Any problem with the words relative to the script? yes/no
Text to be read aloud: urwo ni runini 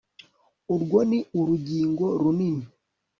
yes